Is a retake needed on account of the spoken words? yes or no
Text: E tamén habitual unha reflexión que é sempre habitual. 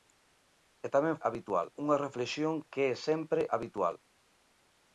no